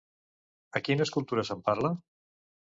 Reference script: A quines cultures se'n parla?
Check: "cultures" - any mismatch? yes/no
no